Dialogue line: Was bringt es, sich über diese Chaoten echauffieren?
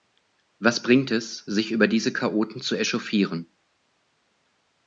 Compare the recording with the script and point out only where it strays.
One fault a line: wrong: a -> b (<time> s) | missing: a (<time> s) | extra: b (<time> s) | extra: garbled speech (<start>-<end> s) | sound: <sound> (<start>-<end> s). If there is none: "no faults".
extra: zu (2.6 s)